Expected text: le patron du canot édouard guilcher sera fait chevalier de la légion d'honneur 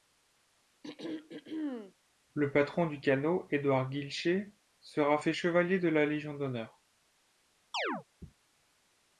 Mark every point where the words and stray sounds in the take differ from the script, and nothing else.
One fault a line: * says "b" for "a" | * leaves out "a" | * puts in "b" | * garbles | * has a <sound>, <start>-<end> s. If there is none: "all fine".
* has a throat clearing, 0.8-1.9 s
* has a chirp, 7.7-8.0 s